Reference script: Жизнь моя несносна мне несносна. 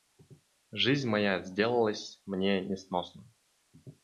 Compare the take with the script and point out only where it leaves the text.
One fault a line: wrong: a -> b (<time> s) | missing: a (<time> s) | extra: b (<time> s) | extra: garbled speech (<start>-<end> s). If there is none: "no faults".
wrong: несносна -> сделалась (1.4 s)